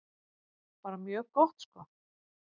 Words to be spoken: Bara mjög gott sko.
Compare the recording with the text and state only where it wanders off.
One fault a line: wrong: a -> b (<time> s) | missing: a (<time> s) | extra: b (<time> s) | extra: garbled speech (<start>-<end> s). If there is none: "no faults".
no faults